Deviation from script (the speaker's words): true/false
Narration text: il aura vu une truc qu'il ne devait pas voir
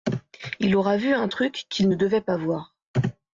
true